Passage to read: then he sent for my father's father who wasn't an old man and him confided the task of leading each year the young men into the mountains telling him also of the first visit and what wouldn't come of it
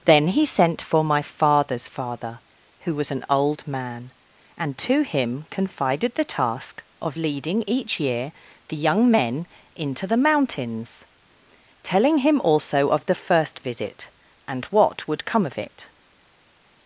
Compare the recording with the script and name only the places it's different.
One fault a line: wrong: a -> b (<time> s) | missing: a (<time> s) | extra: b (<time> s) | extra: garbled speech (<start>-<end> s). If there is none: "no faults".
wrong: wasn't -> was (3.0 s)
extra: to (4.8 s)
wrong: wouldn't -> would (15.1 s)